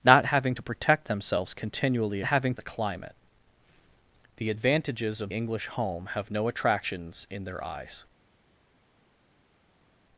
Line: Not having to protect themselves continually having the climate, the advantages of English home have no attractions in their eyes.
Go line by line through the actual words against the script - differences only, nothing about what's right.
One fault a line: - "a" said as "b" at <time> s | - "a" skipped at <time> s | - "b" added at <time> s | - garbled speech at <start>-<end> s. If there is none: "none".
none